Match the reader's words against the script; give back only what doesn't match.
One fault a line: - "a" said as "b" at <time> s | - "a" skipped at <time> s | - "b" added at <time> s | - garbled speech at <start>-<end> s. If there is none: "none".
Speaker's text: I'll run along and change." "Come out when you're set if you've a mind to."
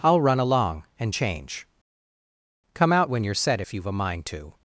none